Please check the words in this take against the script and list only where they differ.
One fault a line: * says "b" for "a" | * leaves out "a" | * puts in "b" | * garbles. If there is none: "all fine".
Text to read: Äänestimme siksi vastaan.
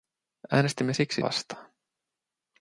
all fine